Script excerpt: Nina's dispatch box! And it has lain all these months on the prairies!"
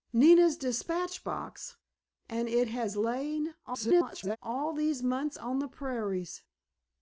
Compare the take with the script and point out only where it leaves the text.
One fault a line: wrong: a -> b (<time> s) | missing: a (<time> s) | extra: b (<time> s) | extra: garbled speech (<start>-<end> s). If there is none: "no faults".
extra: garbled speech (3.6-4.4 s)